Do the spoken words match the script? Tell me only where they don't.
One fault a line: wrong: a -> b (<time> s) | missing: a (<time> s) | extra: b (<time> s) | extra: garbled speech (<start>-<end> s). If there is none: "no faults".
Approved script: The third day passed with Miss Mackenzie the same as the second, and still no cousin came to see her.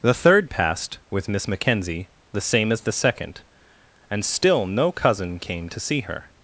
missing: day (0.5 s)